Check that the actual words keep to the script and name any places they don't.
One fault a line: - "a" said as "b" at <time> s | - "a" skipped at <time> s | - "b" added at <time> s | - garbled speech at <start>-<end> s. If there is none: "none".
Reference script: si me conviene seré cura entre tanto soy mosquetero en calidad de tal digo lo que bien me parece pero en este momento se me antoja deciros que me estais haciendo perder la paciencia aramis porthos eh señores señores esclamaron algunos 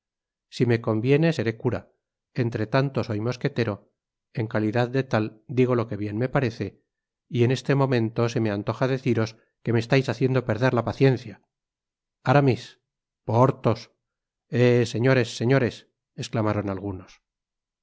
- "pero" said as "y" at 7.3 s